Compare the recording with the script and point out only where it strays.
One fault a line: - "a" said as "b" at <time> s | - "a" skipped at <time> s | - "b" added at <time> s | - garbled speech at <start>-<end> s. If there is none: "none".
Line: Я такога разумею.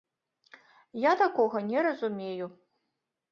- "не" added at 1.7 s